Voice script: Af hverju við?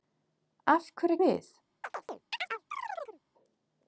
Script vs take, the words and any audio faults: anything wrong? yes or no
yes